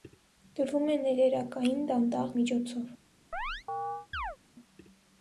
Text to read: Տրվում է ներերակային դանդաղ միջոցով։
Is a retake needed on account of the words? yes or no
no